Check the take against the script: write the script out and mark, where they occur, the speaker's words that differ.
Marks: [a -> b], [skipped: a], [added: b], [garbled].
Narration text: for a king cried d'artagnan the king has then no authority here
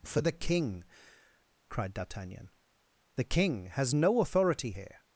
for [a -> the] king cried d'artagnan the king has [skipped: then] no authority here